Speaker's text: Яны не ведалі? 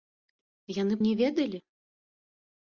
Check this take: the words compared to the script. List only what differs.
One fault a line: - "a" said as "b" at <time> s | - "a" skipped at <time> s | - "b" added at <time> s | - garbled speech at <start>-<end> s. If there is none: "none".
none